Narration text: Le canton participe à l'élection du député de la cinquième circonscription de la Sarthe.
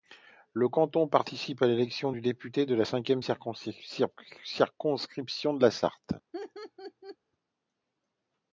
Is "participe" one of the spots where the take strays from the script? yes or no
no